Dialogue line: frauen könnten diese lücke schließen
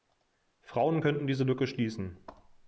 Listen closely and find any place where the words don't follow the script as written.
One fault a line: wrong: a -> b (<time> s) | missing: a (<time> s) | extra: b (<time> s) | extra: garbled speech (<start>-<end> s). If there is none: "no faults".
no faults